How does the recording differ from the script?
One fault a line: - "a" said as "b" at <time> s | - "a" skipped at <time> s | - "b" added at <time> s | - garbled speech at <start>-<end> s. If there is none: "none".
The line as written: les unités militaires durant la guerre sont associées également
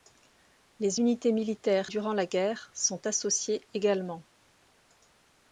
none